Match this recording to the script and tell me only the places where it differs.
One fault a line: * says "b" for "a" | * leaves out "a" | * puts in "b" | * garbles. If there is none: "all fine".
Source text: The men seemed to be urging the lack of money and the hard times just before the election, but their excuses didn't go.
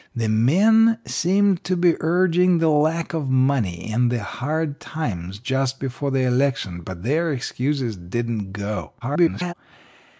* garbles